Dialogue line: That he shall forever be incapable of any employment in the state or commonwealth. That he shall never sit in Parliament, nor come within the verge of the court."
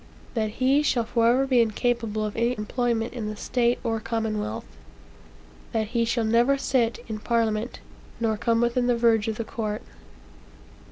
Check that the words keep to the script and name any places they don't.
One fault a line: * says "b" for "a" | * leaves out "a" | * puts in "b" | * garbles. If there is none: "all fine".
all fine